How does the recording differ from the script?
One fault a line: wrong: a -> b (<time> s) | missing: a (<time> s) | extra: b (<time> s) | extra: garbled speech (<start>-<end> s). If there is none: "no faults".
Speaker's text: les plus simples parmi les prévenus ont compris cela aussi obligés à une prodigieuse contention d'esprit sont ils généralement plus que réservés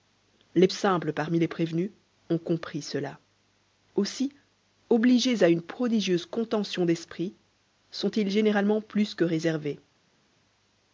missing: plus (0.7 s)